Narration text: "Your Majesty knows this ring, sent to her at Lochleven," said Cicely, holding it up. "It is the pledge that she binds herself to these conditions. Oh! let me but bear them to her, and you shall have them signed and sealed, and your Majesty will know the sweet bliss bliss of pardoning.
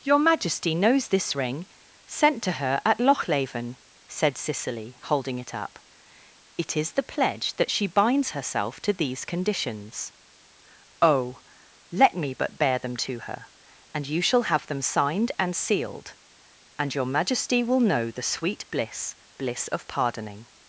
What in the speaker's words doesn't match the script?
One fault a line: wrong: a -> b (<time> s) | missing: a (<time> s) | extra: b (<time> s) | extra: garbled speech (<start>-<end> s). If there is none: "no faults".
no faults